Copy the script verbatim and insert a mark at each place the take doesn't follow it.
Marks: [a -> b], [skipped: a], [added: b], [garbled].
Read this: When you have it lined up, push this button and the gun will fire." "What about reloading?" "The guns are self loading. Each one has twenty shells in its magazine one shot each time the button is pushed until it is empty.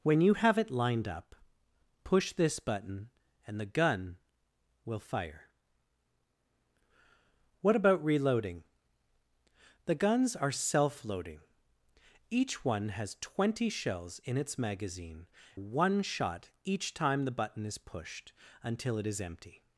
When you have it lined up, push this button and the gun will fire." "What about reloading?" "The guns are self loading. Each one has twenty shells in its magazine one shot each time the button is pushed until it is empty.